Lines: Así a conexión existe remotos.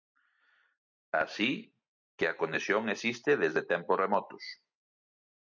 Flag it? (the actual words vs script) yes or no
yes